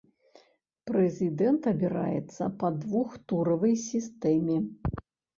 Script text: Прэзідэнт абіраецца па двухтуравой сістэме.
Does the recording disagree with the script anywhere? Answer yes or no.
no